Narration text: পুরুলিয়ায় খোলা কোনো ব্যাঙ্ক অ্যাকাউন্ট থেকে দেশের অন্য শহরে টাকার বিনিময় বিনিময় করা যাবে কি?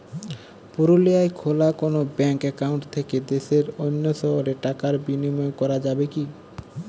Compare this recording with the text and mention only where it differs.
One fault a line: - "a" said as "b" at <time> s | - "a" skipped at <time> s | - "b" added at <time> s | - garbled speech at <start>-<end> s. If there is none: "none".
- "বিনিময়" skipped at 5.5 s